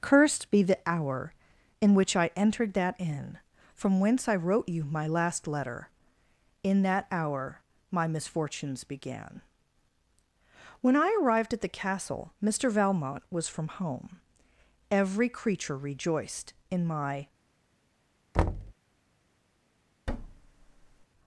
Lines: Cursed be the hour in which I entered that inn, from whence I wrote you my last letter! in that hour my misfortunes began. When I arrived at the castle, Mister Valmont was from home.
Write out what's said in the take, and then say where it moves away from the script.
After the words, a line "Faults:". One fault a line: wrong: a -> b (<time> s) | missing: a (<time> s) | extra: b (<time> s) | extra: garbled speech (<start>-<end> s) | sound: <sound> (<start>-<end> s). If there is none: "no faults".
Cursed be the hour in which I entered that inn, from whence I wrote you my last letter! in that hour my misfortunes began. When I arrived at the castle, Mister Valmont was from home. Every creature rejoiced in my
Faults:
extra: Every creature rejoiced in my (14.9 s)
sound: thud (18.3-18.7 s)
sound: thud (20.1-21.1 s)